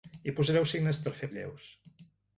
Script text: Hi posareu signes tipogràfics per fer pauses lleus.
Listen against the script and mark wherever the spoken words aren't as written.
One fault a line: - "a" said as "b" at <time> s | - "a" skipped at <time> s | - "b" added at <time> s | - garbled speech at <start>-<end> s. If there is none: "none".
- "tipogràfics" skipped at 1.0 s
- "pauses" skipped at 1.3 s